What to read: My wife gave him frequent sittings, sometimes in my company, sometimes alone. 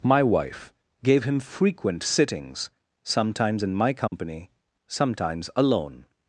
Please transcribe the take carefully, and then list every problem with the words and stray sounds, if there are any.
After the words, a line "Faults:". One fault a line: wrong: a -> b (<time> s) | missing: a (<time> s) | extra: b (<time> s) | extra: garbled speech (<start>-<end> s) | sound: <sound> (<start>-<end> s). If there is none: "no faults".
My wife gave him frequent sittings, sometimes in my company, sometimes alone.
Faults:
sound: dropout (4.1-4.1 s)